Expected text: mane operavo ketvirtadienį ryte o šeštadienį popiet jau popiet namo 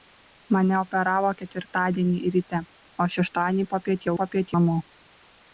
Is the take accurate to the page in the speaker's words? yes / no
yes